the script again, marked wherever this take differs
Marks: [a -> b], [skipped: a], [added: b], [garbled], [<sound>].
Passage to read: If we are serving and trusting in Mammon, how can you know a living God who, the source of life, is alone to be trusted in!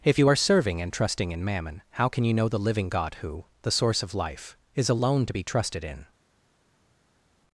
If [we -> you] are serving and trusting in Mammon, how can you know [a -> the] living God who, the source of life, is alone to be trusted in!